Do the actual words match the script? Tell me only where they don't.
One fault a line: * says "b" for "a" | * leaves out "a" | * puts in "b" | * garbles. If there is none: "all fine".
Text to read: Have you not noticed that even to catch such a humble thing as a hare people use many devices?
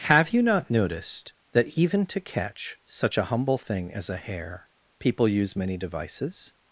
all fine